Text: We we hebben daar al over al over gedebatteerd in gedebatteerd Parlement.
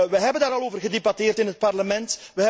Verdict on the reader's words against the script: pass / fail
fail